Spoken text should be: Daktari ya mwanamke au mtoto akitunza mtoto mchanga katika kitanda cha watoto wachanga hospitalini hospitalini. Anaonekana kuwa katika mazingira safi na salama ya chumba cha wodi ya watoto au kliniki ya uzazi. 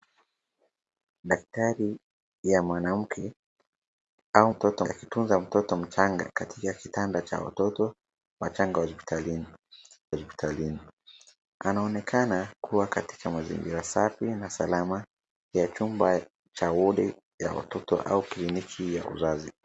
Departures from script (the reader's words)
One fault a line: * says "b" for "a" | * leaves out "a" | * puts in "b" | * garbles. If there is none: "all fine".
all fine